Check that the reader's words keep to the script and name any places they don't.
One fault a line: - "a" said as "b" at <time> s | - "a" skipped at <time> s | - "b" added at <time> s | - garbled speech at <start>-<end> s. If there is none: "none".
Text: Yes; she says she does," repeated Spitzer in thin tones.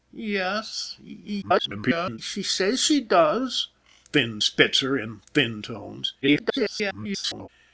- garbled speech at 1.4-2.2 s
- "repeated" said as "thin" at 4.1 s
- garbled speech at 6.2-7.5 s